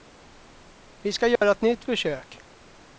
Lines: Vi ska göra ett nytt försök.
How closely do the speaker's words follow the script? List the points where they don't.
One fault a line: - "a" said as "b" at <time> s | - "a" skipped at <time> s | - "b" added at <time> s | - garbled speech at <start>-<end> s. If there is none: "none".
none